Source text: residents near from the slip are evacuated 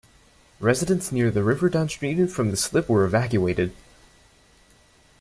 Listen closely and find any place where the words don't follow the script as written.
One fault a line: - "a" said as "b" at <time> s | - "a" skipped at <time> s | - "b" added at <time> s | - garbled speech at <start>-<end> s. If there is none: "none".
- "the river downstream" added at 1.3 s
- "are" said as "were" at 2.9 s